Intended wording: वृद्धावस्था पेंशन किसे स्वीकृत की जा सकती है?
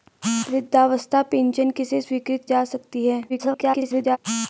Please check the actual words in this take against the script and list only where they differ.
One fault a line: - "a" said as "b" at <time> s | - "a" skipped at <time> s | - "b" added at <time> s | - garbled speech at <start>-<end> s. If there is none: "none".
- "की" skipped at 2.5 s
- garbled speech at 3.3-4.2 s